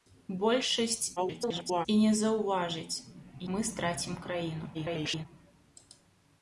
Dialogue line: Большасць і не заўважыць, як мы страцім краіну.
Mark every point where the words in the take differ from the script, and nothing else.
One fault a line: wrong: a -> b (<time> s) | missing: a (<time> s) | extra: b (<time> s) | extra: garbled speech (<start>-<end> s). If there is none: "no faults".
extra: garbled speech (1.2-1.9 s)
missing: як (3.0 s)
extra: garbled speech (4.7-5.3 s)